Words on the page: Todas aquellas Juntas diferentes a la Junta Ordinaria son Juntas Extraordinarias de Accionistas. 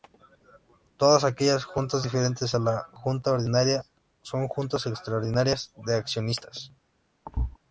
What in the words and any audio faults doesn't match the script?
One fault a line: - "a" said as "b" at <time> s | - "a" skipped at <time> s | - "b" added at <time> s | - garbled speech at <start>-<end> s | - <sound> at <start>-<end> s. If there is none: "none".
- thud at 7.3-7.6 s